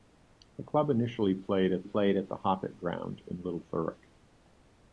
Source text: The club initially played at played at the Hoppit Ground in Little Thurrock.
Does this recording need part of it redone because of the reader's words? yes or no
no